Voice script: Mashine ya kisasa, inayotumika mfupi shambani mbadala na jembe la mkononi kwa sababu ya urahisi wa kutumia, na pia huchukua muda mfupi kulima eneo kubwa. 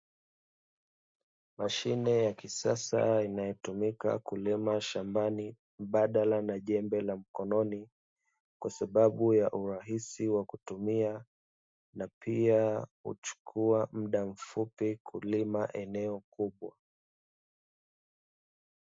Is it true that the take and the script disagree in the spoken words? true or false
true